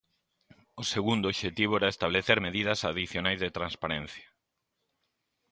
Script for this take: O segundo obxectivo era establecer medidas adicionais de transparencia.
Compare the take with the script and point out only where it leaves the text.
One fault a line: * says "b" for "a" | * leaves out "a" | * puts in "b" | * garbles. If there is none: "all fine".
all fine